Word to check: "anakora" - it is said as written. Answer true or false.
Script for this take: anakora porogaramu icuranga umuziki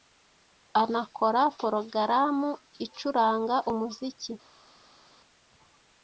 true